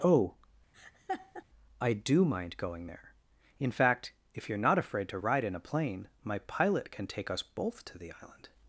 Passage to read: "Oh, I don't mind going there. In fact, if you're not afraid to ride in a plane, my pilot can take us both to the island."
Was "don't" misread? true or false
true